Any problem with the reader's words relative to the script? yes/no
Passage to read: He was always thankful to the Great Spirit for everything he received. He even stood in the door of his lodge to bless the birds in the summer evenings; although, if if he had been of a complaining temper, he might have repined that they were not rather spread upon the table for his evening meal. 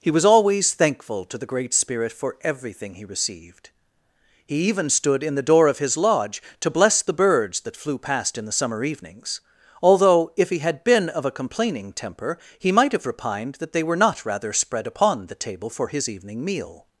yes